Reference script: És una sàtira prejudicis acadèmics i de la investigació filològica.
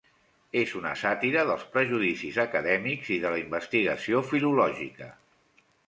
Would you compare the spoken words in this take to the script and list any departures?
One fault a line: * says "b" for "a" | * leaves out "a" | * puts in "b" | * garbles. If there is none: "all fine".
* puts in "dels"